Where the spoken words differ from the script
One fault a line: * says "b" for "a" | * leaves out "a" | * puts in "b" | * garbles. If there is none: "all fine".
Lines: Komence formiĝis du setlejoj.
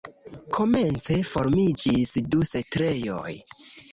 all fine